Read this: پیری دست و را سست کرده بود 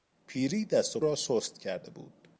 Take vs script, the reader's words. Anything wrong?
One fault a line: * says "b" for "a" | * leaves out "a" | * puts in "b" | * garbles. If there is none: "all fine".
all fine